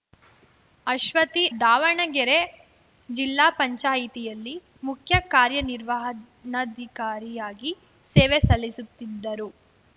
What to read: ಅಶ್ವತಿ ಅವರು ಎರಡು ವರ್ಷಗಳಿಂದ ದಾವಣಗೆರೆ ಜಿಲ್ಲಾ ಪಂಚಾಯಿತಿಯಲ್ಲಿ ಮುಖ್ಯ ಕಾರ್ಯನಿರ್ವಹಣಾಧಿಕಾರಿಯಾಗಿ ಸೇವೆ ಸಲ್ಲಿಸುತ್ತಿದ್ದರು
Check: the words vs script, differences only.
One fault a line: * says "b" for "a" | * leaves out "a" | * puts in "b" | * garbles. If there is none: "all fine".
* leaves out "ಅವರು ಎರಡು ವರ್ಷಗಳಿಂದ"